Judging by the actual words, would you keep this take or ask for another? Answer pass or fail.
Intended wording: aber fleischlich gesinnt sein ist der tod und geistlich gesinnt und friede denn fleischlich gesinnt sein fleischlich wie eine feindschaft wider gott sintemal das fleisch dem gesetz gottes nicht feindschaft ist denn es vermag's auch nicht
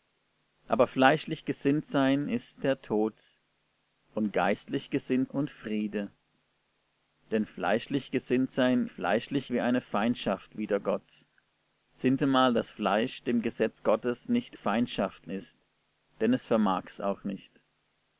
pass